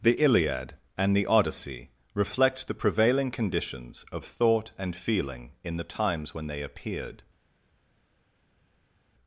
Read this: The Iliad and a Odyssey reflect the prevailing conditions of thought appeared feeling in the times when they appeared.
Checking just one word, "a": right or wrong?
wrong